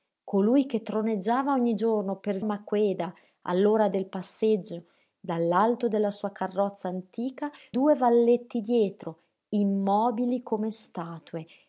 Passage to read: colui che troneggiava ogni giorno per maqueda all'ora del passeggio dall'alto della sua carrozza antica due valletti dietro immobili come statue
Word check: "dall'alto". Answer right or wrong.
right